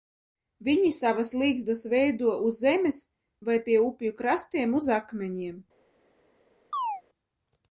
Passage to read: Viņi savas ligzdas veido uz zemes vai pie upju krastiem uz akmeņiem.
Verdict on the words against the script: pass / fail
pass